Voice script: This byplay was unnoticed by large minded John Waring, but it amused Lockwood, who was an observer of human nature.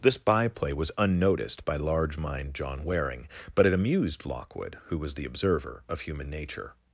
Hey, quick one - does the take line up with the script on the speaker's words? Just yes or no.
no